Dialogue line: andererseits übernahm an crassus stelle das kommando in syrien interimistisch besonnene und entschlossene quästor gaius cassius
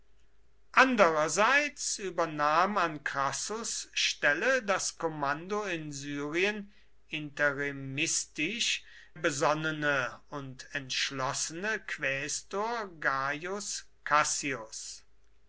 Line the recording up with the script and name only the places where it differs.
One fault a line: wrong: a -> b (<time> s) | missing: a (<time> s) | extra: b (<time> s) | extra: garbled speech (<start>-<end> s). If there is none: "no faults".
no faults